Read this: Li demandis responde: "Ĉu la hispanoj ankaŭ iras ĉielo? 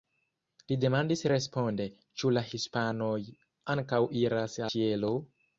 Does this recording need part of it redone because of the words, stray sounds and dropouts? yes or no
no